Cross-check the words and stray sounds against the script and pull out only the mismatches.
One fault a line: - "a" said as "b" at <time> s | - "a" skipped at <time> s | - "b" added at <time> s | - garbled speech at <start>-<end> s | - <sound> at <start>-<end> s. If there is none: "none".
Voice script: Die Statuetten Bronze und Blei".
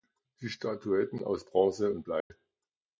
- "aus" added at 1.2 s
- dropout at 2.2-2.3 s